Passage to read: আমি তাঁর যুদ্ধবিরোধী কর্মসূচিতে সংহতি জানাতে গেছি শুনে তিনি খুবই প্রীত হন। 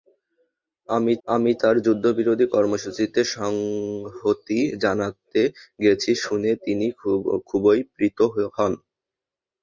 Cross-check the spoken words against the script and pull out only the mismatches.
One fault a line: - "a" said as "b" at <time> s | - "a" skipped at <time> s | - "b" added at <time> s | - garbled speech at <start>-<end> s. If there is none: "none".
- "আমি" added at 1.3 s